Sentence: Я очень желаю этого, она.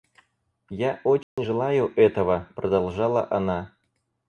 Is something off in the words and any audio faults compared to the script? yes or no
yes